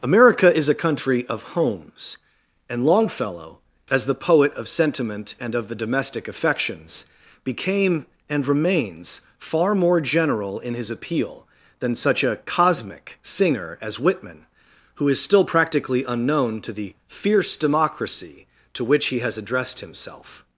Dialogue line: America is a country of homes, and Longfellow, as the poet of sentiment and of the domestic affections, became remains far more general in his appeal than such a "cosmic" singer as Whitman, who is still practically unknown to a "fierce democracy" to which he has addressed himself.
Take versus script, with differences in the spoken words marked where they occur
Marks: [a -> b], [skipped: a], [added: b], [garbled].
America is a country of homes, and Longfellow, as the poet of sentiment and of the domestic affections, became [added: and] remains far more general in his appeal than such a "cosmic" singer as Whitman, who is still practically unknown to [a -> the] "fierce democracy" to which he has addressed himself.